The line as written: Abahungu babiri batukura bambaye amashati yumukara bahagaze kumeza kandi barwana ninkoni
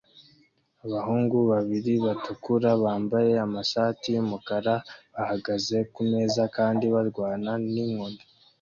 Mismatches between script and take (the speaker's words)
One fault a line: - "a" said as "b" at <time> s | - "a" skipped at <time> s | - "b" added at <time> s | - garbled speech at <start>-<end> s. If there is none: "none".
none